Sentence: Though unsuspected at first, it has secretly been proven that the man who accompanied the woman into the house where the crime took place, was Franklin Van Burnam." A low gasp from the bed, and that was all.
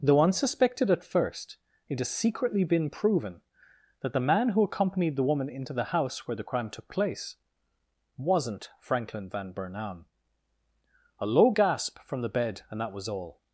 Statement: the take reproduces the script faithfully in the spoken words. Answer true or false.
false